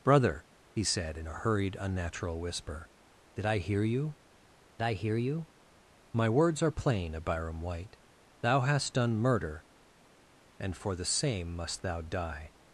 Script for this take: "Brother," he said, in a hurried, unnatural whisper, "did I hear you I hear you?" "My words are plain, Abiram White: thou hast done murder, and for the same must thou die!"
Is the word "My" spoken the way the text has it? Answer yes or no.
yes